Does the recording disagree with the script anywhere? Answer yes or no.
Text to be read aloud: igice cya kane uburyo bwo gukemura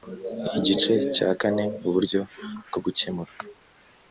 no